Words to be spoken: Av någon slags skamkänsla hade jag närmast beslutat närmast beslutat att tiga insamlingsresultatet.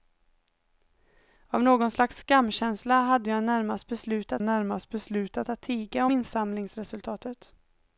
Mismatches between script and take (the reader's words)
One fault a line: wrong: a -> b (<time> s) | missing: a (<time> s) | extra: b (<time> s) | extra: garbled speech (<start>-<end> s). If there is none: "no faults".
no faults